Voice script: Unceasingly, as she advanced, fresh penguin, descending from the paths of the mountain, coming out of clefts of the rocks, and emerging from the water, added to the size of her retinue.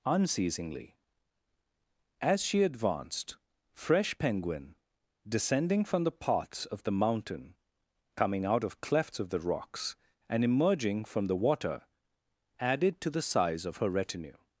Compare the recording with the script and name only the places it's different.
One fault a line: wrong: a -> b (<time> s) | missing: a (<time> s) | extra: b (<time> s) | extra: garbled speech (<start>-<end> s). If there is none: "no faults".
no faults